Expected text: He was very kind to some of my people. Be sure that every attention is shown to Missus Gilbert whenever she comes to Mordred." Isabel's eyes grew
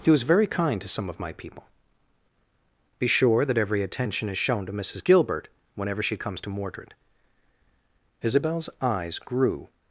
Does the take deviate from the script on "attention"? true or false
false